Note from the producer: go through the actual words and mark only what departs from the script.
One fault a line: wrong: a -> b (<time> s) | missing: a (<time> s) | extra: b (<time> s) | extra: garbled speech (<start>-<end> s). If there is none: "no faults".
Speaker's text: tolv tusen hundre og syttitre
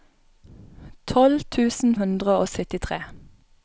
no faults